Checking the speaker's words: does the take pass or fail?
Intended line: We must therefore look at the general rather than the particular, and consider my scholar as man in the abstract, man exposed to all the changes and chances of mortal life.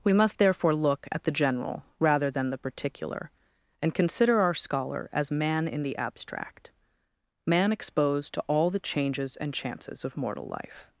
fail